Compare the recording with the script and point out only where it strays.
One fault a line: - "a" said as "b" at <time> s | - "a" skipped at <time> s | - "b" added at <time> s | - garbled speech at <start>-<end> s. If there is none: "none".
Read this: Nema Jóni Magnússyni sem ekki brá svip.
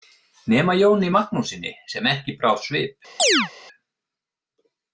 none